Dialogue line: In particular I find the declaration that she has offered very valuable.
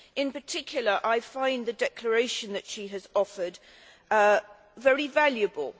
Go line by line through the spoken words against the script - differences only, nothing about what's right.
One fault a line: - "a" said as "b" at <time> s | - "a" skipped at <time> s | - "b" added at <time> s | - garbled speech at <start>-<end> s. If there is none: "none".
none